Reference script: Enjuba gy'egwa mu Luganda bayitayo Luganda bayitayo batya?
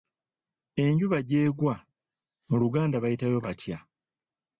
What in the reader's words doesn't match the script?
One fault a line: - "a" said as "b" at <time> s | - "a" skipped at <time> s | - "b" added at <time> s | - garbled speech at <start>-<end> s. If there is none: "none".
- "Luganda bayitayo" skipped at 3.4 s